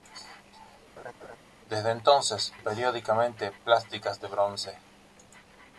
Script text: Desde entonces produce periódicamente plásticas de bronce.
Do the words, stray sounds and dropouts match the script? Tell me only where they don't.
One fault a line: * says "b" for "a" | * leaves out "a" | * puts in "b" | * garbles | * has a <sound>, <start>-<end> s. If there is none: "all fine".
* has a laugh, 1.0-1.4 s
* leaves out "produce"